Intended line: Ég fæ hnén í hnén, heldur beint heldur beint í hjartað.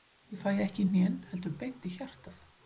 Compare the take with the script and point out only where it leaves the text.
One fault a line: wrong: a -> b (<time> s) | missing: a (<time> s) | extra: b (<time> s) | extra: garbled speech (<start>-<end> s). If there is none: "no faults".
wrong: hnén -> ekki (0.6 s)
missing: heldur beint (1.9 s)